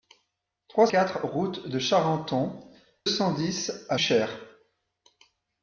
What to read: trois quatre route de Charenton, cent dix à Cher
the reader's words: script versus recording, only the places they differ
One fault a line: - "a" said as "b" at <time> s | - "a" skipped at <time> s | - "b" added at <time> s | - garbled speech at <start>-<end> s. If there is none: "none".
none